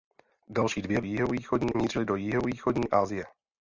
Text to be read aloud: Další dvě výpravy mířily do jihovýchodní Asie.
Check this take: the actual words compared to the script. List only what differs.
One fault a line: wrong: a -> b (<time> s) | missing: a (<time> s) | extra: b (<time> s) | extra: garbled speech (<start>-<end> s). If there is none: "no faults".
wrong: výpravy -> jihovýchodní (1.0 s)